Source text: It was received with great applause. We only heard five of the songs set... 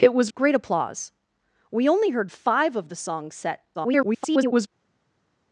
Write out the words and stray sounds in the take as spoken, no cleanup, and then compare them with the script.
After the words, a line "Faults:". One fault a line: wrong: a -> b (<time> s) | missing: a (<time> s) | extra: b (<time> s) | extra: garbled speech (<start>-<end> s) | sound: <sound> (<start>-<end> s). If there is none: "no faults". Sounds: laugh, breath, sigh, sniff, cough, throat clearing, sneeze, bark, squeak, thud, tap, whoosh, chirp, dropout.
It was great applause. We only heard five of the songs set... [garbled]
Faults:
missing: received with (0.3 s)
extra: garbled speech (3.7-4.7 s)